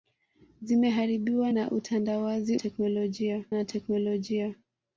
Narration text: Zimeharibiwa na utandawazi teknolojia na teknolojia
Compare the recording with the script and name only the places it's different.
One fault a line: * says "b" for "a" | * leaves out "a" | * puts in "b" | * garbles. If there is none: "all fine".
all fine